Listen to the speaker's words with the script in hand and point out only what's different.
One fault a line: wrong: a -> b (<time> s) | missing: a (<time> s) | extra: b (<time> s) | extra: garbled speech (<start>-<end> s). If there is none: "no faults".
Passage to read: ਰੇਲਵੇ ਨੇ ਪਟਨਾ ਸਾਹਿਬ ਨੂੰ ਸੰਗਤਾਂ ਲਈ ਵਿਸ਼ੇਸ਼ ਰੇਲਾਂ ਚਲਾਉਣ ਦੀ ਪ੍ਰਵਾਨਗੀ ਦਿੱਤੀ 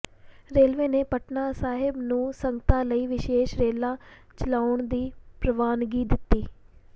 no faults